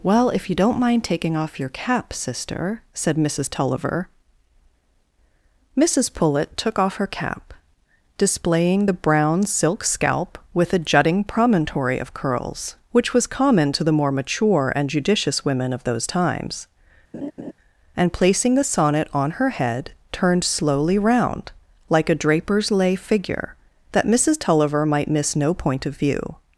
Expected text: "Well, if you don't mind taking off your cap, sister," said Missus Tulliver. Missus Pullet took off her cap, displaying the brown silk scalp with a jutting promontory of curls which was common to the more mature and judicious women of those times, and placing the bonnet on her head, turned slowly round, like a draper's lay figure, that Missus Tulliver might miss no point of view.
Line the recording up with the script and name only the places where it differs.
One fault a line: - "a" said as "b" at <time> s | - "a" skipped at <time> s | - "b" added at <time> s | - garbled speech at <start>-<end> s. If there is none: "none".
- "bonnet" said as "sonnet" at 18.6 s